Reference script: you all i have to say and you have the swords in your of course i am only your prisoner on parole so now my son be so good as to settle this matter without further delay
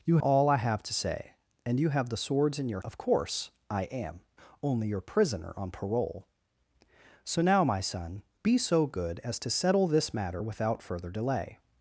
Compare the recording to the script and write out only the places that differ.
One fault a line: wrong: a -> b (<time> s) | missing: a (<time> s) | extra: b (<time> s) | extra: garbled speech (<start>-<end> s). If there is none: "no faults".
no faults